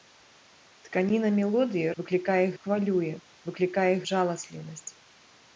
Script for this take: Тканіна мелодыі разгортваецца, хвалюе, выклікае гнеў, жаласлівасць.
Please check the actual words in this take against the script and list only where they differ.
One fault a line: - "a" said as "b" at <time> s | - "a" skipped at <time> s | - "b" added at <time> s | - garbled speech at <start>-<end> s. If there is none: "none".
- "разгортваецца" said as "выклікае" at 2.0 s
- "гнеў" skipped at 3.9 s